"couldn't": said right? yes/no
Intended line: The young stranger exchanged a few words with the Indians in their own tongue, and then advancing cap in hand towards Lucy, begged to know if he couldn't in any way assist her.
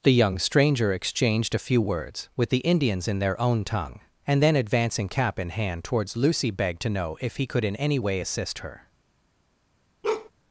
no